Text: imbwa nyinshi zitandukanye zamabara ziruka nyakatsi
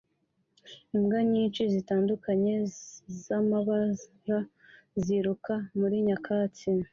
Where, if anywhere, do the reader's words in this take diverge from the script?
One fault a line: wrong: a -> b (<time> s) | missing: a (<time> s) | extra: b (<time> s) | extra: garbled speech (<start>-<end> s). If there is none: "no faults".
extra: muri (5.8 s)